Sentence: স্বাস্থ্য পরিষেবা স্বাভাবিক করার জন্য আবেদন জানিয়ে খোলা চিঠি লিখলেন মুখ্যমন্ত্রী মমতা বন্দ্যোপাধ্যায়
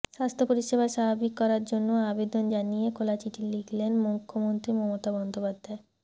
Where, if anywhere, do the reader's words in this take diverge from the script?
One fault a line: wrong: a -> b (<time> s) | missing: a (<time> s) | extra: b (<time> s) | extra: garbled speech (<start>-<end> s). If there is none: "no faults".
no faults